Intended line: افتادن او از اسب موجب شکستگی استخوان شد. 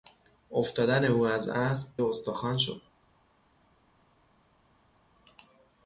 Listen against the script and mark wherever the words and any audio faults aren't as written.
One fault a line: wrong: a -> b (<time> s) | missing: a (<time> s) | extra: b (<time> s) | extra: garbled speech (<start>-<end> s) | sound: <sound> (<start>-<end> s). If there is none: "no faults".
missing: موجب شکستگی (1.9 s)